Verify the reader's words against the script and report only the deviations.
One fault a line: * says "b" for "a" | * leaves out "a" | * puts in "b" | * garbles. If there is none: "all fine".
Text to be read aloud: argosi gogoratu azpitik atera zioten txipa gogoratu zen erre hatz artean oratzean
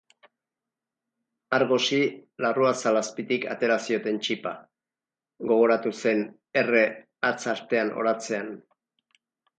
* says "larruazal" for "gogoratu"